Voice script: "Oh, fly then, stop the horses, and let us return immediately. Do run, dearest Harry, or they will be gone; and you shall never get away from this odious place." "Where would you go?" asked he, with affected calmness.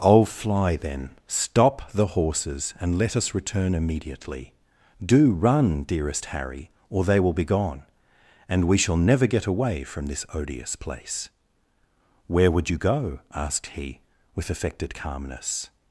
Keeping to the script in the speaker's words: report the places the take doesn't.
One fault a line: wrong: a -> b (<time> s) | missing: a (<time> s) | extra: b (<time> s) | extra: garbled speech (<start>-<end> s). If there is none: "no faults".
wrong: you -> we (8.7 s)